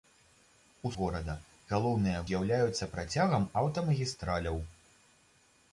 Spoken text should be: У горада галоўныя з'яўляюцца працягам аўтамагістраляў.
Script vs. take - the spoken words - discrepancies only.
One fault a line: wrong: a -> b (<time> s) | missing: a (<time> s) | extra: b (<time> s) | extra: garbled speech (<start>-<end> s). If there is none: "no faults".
no faults